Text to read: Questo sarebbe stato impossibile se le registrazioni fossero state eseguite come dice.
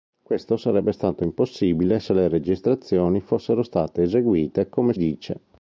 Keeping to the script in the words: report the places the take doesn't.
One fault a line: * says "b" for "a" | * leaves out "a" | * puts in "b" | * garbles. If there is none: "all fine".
all fine